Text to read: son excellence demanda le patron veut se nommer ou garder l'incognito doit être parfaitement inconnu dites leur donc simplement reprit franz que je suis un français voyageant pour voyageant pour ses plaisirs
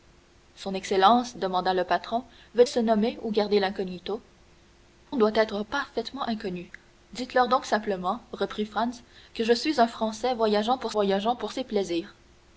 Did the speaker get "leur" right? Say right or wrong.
right